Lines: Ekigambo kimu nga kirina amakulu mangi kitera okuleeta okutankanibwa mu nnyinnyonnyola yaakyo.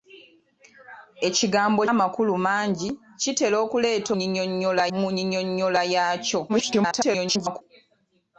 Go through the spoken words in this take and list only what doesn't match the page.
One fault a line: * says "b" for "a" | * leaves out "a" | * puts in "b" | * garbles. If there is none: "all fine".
* leaves out "kimu nga kirina"
* says "nnyinnyonnyola" for "okutankanibwa"
* garbles